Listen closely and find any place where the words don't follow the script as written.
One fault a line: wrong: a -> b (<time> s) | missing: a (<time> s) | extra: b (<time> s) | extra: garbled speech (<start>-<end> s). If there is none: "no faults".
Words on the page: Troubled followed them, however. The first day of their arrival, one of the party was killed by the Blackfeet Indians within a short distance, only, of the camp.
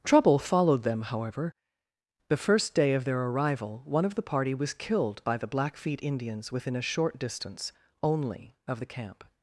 wrong: Troubled -> Trouble (0.0 s)